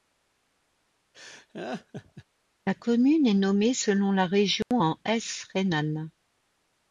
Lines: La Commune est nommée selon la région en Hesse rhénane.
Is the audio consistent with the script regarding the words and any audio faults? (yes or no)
no